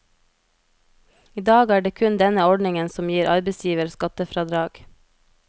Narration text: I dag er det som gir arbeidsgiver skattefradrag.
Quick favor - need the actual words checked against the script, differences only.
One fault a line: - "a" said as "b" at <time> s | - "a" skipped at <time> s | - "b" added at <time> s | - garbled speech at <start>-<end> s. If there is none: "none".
- "kun denne ordningen" added at 2.0 s